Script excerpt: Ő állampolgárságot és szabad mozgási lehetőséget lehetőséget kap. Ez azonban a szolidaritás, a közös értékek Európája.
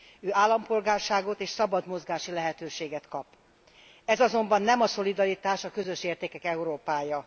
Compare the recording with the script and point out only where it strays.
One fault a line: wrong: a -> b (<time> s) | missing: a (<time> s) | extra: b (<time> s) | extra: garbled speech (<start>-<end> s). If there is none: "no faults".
missing: lehetőséget (3.1 s)
extra: nem (4.6 s)